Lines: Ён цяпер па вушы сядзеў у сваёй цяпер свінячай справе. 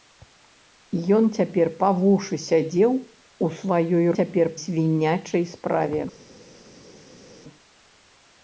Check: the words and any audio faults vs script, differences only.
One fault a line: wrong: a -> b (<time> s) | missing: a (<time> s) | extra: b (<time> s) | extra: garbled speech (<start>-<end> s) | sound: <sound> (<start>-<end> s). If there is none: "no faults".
no faults